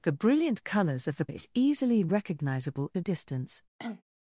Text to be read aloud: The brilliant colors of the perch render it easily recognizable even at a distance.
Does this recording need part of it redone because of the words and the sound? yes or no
yes